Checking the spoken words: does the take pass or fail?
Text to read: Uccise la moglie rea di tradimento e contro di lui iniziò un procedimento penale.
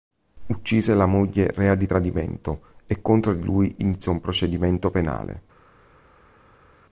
pass